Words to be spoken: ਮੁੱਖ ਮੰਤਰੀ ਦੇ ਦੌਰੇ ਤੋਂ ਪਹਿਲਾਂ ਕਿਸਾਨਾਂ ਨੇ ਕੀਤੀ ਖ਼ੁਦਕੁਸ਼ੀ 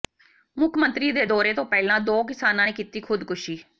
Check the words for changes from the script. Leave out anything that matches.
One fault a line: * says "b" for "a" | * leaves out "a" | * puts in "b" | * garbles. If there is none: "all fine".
* puts in "ਦੋ"